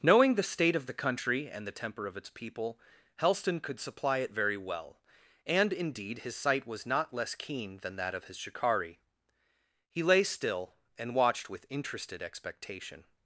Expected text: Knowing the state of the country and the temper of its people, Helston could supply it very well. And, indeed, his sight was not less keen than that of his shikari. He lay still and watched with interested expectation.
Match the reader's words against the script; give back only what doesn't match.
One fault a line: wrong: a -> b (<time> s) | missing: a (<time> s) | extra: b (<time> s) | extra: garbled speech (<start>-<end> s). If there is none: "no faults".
no faults